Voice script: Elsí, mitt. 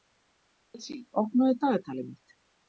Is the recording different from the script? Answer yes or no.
yes